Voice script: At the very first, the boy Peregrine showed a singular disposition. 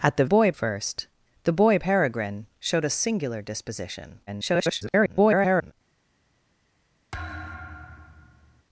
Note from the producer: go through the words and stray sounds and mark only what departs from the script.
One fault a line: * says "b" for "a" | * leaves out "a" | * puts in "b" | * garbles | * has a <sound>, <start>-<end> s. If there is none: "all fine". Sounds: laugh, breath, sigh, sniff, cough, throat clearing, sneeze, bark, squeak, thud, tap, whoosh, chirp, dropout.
* says "boy" for "very"
* garbles
* has a thud, 7.1-8.6 s